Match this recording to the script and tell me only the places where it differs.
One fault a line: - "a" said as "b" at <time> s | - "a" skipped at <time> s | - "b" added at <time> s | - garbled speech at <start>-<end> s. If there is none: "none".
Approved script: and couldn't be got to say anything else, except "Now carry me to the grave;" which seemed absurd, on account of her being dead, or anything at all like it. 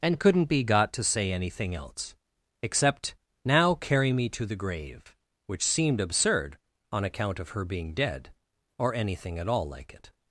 none